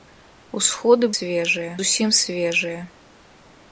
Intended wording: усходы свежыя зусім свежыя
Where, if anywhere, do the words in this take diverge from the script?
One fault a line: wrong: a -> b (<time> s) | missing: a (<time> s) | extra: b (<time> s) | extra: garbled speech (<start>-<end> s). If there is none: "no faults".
no faults